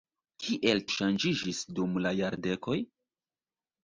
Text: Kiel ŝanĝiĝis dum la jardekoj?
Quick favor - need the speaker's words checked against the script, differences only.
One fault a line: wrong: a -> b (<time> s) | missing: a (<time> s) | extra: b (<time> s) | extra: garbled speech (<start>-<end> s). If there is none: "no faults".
no faults